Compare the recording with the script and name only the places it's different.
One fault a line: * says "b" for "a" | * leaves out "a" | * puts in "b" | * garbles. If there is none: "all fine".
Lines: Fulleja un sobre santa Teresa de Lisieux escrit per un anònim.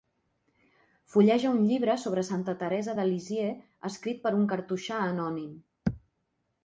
* puts in "llibre"
* puts in "cartoixà"